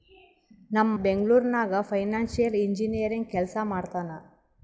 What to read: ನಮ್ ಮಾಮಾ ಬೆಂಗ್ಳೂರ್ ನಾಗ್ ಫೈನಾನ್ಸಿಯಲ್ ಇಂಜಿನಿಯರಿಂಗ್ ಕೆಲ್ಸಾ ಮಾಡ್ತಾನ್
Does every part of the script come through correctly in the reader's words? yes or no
no